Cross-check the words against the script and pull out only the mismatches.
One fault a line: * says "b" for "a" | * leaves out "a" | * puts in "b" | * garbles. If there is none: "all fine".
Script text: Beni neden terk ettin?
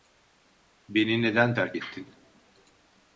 all fine